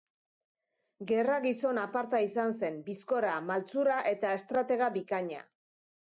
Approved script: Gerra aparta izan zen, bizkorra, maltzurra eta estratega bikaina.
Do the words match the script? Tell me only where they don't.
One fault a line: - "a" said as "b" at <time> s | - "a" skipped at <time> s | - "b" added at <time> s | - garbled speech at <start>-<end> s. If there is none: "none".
- "gizon" added at 1.4 s